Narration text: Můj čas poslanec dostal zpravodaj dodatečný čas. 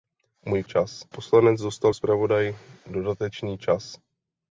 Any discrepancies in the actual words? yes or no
no